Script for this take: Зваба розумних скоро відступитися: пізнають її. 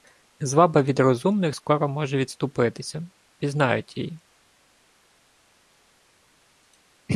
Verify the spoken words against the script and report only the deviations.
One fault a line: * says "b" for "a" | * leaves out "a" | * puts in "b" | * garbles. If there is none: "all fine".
* puts in "від"
* puts in "може"